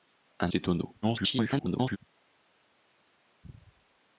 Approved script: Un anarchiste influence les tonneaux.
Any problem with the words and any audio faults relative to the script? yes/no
yes